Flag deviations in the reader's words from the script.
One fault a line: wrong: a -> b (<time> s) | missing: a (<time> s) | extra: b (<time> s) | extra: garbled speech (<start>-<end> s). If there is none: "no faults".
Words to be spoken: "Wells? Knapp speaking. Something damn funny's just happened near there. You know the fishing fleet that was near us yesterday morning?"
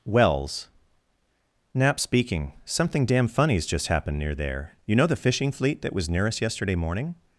no faults